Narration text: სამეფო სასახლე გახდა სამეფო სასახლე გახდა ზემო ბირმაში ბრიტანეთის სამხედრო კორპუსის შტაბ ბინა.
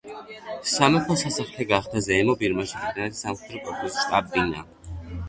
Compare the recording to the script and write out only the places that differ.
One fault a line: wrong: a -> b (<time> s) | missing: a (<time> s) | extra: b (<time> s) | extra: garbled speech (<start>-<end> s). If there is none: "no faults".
missing: სამეფო სასახლე გახდა (2.0 s)